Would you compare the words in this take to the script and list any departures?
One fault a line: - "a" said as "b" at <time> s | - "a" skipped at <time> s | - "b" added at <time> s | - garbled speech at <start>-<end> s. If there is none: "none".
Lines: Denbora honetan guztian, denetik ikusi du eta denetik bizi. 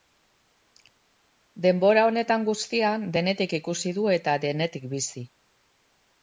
none